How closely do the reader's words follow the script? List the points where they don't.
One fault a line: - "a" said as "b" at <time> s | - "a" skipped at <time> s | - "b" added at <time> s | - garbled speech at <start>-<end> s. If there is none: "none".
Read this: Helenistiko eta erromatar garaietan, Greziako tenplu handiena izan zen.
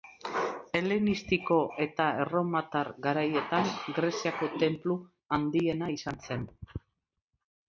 none